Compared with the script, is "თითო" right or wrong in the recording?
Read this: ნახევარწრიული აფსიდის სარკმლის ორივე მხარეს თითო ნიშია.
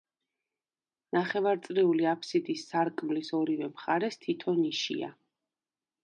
right